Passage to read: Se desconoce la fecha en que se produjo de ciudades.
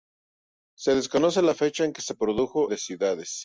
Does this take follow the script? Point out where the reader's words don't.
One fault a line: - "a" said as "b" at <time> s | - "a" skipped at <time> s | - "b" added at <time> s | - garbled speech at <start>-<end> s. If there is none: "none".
none